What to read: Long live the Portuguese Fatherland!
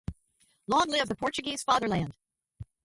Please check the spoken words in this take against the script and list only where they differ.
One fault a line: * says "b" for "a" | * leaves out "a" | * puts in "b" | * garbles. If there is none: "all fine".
all fine